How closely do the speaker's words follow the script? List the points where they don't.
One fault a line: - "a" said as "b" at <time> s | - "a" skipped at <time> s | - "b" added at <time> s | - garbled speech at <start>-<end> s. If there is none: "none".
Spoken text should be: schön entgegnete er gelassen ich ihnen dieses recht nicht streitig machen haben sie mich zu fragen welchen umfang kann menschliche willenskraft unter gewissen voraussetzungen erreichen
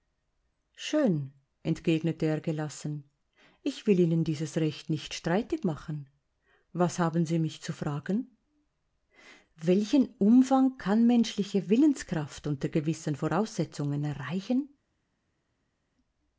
- "will" added at 3.9 s
- "was" added at 6.7 s